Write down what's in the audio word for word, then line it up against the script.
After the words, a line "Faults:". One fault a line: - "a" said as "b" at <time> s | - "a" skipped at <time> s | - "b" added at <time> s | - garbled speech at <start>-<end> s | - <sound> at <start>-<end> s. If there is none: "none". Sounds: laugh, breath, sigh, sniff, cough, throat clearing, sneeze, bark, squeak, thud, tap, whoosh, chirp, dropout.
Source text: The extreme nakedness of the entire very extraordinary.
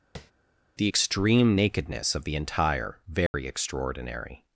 The extreme nakedness of the entire very extraordinary.
Faults:
- tap at 0.2-0.3 s
- dropout at 3.3-3.3 s